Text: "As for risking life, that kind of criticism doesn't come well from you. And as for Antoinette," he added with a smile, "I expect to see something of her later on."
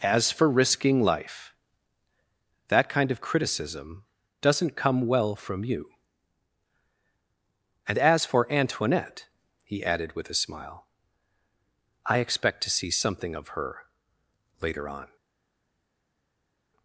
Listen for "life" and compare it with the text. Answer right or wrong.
right